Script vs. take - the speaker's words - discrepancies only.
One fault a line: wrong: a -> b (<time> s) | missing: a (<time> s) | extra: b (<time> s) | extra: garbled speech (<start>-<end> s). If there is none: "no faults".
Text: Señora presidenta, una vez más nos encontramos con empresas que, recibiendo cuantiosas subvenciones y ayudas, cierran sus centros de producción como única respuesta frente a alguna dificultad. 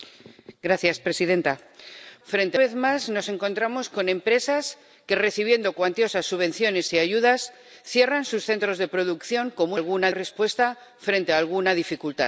wrong: una -> frente (2.2 s)
wrong: única -> alguna (9.7 s)